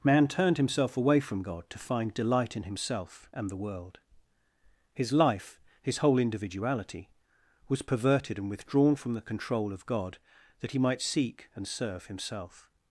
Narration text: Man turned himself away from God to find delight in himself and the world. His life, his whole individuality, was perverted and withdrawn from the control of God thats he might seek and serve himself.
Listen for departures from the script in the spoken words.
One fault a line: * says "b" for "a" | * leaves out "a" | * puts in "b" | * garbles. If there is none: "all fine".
* says "that" for "thats"